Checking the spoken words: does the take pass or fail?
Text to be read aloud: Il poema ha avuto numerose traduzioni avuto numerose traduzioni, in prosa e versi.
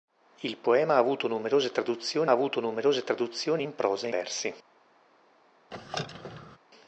pass